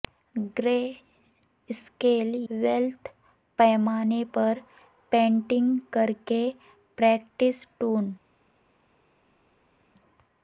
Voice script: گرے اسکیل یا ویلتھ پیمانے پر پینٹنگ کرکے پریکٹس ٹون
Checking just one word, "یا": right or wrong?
wrong